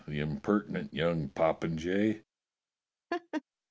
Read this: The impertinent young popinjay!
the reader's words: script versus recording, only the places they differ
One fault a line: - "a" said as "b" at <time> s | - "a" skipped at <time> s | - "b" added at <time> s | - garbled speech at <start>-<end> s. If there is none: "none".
none